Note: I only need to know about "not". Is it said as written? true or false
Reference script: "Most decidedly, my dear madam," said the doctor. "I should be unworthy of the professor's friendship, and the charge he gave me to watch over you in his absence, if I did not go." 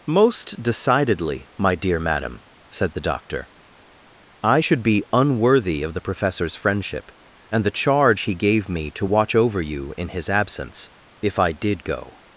false